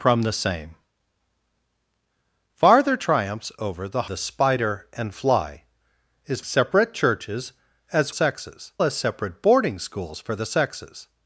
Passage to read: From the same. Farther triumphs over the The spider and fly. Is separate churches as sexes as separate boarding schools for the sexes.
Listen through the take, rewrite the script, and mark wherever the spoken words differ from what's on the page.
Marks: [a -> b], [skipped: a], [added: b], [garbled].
From the same. Farther triumphs over the The spider and fly. Is separate churches as sexes as separate boarding schools for the sexes.